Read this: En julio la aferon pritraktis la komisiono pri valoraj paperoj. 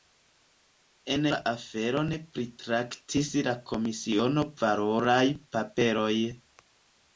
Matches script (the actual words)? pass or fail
fail